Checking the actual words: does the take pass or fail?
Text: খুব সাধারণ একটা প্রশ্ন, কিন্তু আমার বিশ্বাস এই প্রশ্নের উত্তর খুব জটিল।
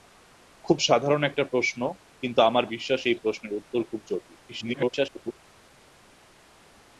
fail